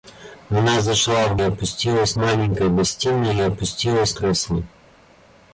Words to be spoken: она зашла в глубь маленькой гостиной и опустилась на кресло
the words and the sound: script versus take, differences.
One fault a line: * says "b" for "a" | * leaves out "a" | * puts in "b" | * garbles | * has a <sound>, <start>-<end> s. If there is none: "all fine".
* says "опустилась" for "глубь"
* leaves out "на"